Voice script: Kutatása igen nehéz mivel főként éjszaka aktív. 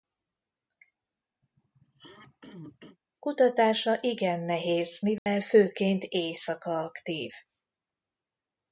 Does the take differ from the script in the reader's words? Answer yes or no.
no